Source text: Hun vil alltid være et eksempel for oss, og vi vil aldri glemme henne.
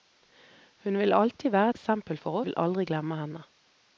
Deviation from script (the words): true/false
true